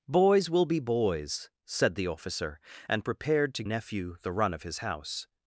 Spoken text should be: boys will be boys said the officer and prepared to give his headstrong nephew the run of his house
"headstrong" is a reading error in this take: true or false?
true